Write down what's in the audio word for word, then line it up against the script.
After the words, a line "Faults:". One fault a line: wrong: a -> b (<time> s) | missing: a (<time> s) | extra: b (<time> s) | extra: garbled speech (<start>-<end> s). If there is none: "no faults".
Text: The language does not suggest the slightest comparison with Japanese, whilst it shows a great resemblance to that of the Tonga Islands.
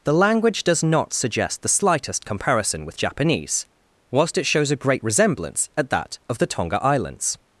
The language does not suggest the slightest comparison with Japanese, whilst it shows a great resemblance at that of the Tonga Islands.
Faults:
wrong: to -> at (5.8 s)